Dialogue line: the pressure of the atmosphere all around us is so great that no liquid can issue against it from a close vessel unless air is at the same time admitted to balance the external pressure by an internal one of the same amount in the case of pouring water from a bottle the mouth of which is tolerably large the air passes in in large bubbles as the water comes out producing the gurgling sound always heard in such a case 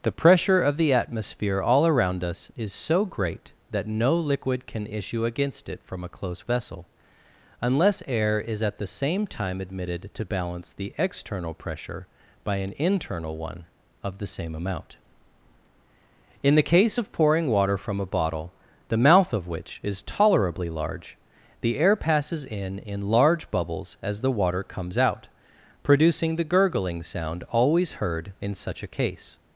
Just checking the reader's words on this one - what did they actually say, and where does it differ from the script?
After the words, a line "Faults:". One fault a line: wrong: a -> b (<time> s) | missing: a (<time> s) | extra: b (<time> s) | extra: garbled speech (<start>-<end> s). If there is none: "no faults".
the pressure of the atmosphere all around us is so great that no liquid can issue against it from a close vessel unless air is at the same time admitted to balance the external pressure by an internal one of the same amount in the case of pouring water from a bottle the mouth of which is tolerably large the air passes in in large bubbles as the water comes out producing the gurgling sound always heard in such a case
Faults:
no faults